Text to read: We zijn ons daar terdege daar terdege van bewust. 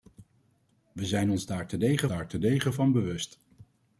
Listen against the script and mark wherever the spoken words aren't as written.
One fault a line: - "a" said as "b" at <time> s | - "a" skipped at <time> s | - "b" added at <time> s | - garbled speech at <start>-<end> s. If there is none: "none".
none